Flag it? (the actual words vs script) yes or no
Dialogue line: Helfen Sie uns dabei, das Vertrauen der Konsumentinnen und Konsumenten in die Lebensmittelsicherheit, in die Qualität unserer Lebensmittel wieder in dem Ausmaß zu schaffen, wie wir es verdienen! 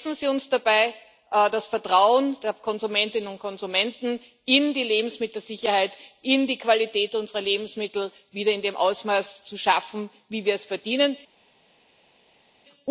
no